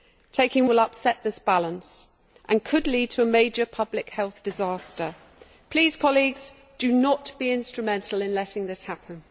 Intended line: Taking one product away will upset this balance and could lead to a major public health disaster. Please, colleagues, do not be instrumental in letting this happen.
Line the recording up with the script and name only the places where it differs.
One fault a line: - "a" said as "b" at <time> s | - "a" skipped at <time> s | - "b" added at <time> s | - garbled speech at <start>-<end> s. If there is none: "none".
- "one product away" skipped at 0.7 s